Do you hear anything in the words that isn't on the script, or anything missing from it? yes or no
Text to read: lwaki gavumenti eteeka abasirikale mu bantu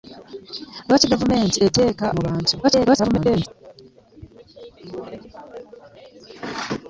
yes